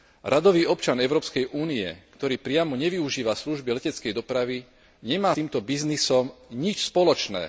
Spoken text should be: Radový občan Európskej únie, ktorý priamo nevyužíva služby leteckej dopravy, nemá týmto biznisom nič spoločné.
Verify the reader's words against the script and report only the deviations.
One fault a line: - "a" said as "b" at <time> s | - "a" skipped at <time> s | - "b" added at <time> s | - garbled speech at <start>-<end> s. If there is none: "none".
none